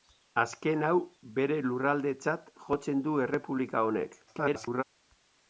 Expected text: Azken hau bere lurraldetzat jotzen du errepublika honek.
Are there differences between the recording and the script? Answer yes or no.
yes